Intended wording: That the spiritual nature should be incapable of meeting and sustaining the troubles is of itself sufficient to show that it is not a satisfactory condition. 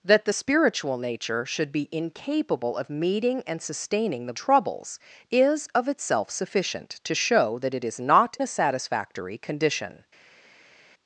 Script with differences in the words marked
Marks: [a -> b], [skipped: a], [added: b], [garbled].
That the spiritual nature should be incapable of meeting and sustaining the troubles is of itself sufficient to show that it is not a satisfactory condition.